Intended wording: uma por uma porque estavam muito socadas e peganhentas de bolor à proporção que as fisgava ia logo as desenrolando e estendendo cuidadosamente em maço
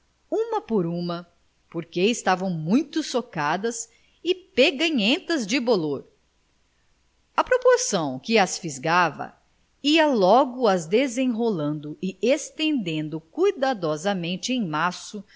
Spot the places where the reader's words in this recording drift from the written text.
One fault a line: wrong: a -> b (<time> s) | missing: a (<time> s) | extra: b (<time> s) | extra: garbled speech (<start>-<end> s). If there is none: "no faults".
no faults